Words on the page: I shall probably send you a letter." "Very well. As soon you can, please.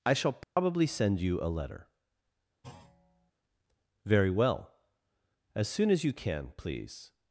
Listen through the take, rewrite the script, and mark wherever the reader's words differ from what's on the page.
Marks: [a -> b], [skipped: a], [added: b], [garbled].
I shall probably send you a letter." "Very well. As soon [added: as] you can, please.